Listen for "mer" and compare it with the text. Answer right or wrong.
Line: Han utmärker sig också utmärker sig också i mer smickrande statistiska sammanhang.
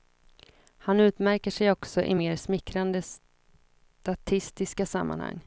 right